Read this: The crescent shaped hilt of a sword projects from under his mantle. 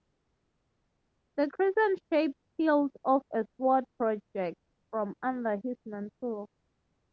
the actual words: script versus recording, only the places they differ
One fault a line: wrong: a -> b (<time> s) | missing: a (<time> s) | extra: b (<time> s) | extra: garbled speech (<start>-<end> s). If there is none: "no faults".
no faults